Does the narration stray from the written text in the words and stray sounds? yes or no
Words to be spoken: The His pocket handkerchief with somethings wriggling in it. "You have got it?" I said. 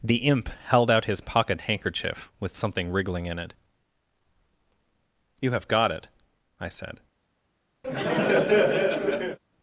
yes